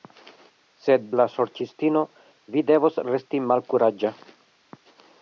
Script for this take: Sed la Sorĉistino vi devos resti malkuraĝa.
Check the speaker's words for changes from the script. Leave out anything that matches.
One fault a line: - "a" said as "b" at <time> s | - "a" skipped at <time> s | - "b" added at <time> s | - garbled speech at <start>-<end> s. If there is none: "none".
none